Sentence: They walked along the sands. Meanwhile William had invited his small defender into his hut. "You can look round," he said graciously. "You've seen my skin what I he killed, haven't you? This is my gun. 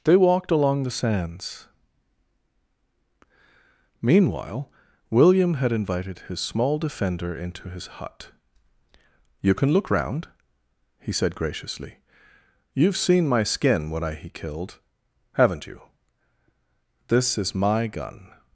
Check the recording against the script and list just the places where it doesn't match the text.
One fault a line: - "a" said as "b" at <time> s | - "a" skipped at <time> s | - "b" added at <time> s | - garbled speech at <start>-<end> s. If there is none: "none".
- "what" said as "when" at 13.9 s